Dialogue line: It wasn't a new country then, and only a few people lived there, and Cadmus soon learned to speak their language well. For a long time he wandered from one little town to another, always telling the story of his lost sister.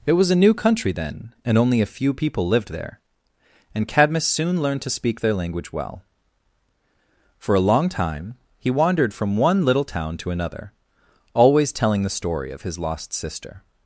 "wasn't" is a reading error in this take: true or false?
true